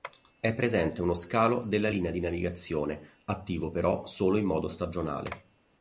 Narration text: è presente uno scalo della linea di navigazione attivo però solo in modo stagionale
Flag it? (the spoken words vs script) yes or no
no